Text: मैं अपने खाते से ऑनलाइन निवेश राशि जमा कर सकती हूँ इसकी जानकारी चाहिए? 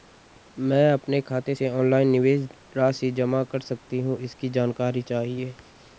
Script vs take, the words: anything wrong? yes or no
no